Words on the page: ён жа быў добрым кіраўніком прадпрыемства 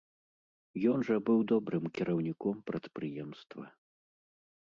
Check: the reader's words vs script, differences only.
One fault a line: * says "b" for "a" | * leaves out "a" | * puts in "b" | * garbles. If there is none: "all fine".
all fine